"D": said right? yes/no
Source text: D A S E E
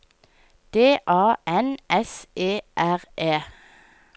yes